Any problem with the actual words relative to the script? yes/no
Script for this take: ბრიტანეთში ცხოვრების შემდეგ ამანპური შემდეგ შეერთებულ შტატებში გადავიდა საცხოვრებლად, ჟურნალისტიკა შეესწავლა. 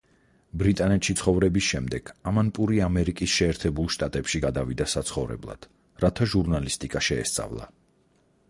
yes